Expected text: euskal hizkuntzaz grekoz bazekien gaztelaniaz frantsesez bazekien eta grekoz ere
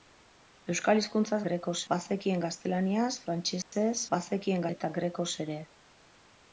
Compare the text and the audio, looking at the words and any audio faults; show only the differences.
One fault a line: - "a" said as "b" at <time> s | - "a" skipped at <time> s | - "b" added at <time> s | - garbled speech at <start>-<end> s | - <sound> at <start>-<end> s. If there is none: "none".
- dropout at 3.6-3.7 s